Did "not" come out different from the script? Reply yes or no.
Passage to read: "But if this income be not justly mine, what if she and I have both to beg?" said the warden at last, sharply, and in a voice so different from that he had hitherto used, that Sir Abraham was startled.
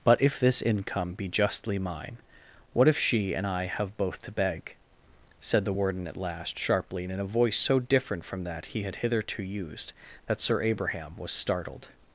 yes